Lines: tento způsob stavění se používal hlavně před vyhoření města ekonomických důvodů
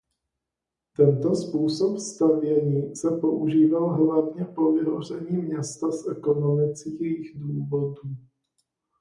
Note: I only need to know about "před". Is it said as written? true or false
false